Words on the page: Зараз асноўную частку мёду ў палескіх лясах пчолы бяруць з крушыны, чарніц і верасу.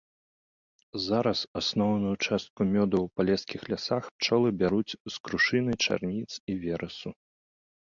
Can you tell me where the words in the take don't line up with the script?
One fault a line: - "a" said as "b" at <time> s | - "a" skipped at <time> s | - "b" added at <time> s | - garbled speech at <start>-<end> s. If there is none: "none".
none